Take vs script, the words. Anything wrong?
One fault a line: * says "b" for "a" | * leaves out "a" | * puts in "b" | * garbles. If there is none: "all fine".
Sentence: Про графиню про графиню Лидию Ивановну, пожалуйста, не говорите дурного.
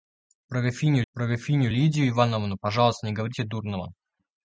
all fine